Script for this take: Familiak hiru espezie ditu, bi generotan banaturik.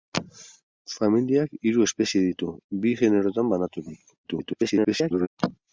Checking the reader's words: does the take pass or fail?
fail